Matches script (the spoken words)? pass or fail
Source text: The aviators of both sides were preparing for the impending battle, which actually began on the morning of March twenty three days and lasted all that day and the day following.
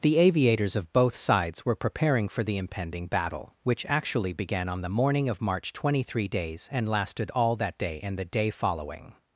pass